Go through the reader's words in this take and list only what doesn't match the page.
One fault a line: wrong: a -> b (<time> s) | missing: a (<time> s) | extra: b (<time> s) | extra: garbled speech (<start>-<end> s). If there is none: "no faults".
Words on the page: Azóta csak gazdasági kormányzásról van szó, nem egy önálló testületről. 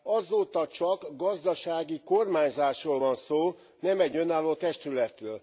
no faults